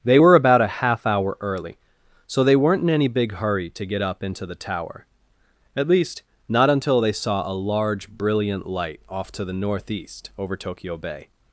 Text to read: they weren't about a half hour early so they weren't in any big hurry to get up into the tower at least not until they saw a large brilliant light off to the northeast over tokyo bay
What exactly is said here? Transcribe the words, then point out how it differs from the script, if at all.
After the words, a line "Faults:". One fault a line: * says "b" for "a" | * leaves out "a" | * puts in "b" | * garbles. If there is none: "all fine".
they were about a half hour early so they weren't in any big hurry to get up into the tower at least not until they saw a large brilliant light off to the northeast over tokyo bay
Faults:
* says "were" for "weren't"